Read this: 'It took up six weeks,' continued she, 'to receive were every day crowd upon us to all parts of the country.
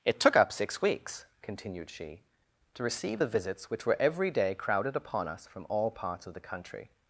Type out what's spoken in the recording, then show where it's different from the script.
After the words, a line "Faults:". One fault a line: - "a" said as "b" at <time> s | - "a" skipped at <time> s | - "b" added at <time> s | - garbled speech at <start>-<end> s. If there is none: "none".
'It took up six weeks,' continued she, 'to receive the visits which were every day crowded upon us from all parts of the country.
Faults:
- "the visits which" added at 3.2 s
- "crowd" said as "crowded" at 4.5 s
- "to" said as "from" at 5.5 s